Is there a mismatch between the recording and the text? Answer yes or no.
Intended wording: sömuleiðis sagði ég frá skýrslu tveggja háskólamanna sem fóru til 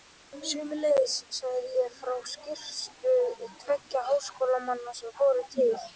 no